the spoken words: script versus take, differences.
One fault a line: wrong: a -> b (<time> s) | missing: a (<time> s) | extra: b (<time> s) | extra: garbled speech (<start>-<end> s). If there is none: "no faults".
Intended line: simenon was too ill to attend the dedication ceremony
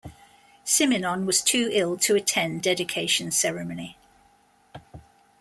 missing: the (2.6 s)